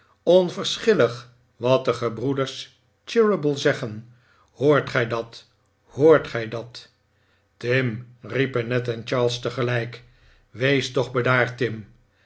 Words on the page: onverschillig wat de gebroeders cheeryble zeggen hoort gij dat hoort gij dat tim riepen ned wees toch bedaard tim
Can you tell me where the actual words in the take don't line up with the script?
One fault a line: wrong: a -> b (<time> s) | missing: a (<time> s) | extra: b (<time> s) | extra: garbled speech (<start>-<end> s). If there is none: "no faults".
extra: en charles tegelijk (8.9 s)